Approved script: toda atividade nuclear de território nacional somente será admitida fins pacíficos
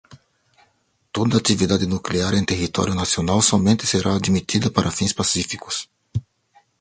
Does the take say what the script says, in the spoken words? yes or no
no